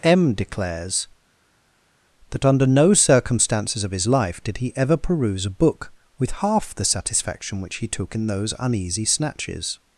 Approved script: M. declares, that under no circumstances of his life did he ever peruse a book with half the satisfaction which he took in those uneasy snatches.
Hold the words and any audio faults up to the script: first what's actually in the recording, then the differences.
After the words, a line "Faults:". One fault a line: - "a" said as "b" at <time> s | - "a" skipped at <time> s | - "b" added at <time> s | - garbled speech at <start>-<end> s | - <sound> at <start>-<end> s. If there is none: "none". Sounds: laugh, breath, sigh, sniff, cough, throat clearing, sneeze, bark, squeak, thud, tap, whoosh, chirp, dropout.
M. declares, that under no circumstances of his life did he ever peruse a book with half the satisfaction which he took in those uneasy snatches.
Faults:
none